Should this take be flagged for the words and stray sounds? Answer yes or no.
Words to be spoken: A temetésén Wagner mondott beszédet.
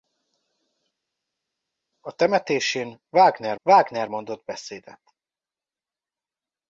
yes